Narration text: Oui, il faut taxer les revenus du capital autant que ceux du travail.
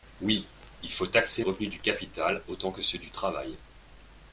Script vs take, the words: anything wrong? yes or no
yes